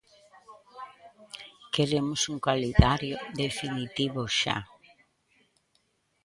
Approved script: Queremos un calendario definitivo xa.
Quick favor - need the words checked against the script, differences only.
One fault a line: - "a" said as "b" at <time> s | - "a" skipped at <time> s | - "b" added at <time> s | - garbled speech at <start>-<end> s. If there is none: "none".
none